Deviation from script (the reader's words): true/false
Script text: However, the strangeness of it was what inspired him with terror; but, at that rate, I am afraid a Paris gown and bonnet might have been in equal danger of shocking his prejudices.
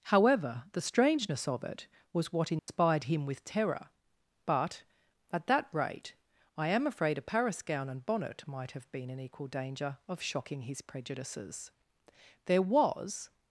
true